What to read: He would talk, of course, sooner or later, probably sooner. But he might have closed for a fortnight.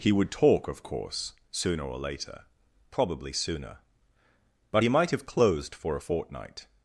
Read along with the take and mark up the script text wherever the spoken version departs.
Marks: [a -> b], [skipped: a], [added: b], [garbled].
He would talk, of course, sooner or later, probably sooner. But he might have closed for a fortnight.